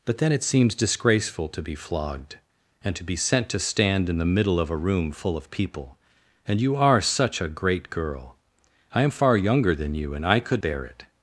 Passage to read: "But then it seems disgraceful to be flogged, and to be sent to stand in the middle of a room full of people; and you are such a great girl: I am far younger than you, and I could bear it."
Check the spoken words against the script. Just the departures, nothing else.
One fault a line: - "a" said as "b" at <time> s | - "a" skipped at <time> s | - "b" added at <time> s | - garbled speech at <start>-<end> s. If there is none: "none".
none